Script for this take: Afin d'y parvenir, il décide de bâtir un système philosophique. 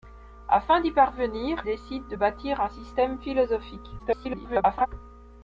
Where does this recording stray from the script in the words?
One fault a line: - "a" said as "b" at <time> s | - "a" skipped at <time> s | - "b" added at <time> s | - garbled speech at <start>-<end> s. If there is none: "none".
- "il" skipped at 1.6 s
- garbled speech at 4.0-4.9 s